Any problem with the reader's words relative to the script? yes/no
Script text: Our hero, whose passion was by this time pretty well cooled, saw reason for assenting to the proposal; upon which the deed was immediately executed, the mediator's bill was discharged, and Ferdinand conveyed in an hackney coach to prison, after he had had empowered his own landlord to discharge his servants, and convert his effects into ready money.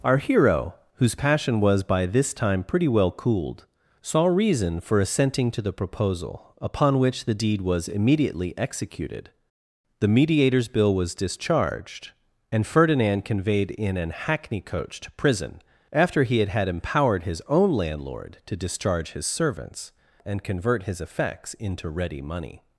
no